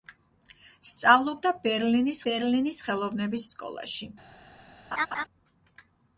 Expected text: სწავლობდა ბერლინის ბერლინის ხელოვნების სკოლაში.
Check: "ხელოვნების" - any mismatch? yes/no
no